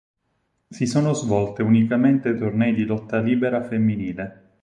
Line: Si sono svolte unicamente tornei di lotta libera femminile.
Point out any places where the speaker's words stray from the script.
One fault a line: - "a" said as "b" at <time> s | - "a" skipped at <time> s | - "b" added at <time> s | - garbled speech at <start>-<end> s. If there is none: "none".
none